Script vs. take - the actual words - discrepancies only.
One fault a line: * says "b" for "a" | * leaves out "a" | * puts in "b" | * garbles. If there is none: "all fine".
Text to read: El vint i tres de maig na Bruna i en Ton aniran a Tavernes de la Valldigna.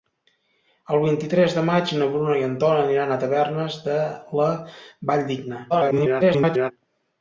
* garbles